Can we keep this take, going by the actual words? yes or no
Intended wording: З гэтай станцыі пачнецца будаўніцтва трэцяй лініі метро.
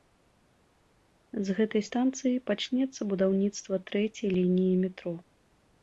yes